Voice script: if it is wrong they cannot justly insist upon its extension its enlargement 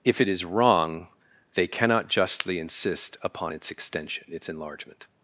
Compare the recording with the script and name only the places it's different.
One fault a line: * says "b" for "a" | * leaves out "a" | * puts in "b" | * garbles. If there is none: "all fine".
all fine